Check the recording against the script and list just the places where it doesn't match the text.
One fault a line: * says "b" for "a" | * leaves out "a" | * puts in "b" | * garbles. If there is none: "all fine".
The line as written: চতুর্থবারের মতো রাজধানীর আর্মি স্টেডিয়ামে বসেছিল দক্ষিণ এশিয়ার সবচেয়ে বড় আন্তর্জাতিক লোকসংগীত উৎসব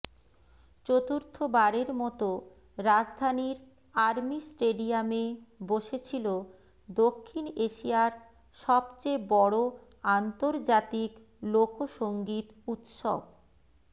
all fine